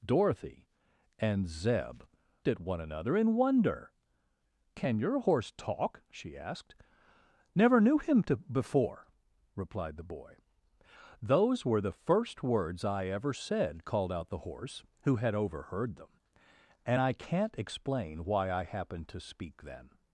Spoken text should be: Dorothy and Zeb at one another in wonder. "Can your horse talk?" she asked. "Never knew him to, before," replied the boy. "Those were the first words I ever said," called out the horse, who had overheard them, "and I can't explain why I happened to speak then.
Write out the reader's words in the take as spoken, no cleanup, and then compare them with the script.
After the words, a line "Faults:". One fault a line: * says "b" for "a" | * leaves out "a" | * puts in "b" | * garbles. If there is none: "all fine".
Dorothy and Zeb at one another in wonder. "Can your horse talk?" she asked. "Never knew him to, before," replied the boy. "Those were the first words I ever said," called out the horse, who had overheard them, "and I can't explain why I happened to speak then.
Faults:
all fine